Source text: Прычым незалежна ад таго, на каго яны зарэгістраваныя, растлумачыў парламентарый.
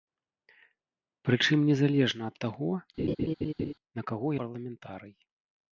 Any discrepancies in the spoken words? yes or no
yes